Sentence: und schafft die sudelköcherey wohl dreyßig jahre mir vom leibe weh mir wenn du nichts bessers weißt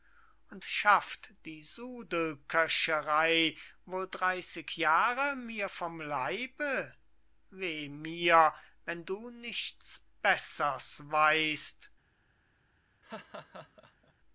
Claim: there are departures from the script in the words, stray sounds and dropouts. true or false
true